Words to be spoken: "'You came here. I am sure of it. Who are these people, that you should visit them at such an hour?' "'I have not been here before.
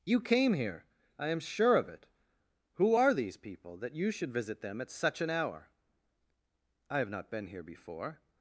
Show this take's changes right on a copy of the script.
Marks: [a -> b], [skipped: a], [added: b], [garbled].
"'You came here. I am sure of it. Who are these people, that you should visit them at such an hour?' "'I have not been here before.